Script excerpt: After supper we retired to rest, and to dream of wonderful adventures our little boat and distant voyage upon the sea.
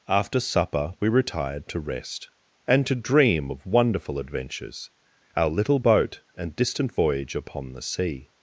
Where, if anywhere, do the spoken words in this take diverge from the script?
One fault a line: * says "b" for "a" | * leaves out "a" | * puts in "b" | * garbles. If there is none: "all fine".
all fine